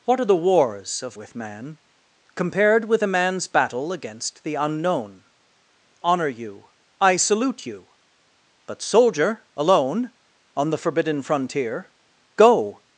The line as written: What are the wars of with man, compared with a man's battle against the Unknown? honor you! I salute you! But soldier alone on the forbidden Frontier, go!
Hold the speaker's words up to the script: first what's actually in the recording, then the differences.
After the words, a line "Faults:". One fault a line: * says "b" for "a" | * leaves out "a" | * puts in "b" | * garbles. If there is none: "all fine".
What are the wars of with man, compared with a man's battle against the Unknown? honor you! I salute you! But soldier alone on the forbidden Frontier, go!
Faults:
all fine